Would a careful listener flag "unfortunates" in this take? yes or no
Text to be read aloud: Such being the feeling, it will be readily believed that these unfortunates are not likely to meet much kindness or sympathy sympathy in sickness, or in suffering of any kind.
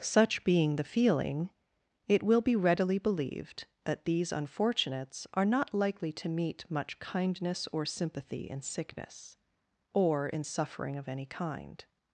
no